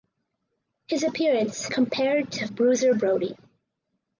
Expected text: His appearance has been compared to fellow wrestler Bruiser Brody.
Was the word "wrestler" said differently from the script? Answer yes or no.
yes